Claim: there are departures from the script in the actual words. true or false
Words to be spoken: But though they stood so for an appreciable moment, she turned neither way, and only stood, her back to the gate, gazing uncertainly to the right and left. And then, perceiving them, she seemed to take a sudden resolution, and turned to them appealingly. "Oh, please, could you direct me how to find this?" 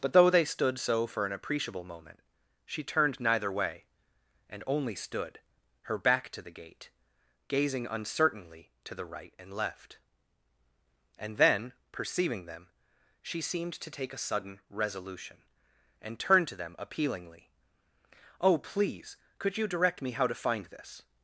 false